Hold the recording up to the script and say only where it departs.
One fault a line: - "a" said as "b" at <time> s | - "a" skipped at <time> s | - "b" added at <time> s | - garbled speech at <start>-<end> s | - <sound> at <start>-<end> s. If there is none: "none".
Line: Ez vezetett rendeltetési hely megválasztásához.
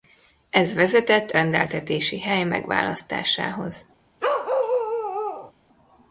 - bark at 4.2-5.5 s